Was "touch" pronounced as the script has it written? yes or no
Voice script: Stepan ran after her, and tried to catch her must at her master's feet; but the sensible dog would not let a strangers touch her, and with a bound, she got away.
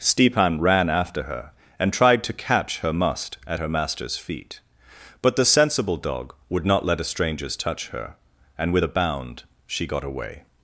yes